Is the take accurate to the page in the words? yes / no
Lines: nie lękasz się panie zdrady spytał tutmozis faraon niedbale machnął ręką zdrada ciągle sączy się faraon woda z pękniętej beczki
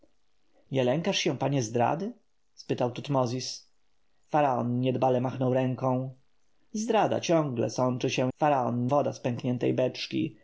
yes